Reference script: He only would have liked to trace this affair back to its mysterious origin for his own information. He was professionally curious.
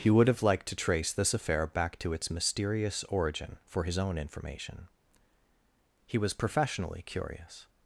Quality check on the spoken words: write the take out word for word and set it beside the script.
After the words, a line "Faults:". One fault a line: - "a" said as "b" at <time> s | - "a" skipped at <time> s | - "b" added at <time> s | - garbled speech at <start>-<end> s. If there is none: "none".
He would have liked to trace this affair back to its mysterious origin for his own information. He was professionally curious.
Faults:
- "only" skipped at 0.1 s